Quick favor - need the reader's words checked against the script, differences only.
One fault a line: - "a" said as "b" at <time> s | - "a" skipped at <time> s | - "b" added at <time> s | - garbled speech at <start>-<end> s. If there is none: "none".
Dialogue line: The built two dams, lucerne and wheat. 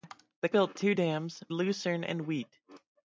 none